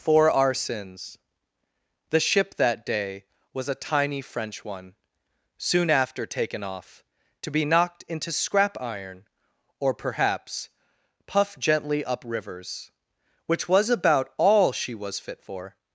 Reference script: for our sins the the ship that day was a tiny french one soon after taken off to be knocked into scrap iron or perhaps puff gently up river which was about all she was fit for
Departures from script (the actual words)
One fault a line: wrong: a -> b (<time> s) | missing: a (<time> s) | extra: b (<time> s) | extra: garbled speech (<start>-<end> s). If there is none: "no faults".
missing: the (2.2 s)
wrong: river -> rivers (12.2 s)